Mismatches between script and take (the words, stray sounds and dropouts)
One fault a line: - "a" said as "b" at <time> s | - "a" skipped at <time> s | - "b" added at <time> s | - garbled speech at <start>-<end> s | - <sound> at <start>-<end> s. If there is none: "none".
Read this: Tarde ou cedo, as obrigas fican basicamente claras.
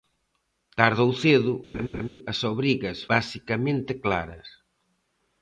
- laugh at 1.7-2.1 s
- "fican" skipped at 3.0 s